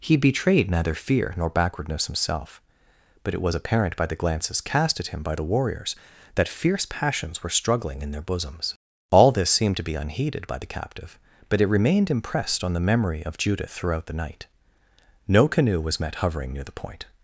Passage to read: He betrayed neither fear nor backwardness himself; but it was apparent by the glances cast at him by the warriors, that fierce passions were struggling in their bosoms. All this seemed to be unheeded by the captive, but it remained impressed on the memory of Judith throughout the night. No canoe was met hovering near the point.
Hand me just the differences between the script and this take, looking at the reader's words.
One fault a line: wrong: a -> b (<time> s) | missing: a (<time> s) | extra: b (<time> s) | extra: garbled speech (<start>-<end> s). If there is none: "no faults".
no faults